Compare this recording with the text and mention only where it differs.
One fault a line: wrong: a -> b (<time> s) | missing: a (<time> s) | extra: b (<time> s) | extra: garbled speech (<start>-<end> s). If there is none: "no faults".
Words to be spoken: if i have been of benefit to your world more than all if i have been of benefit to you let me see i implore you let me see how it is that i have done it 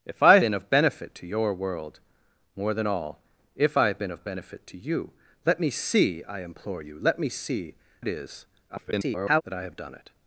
missing: have (0.4 s)
missing: how (7.7 s)
extra: garbled speech (8.7-9.4 s)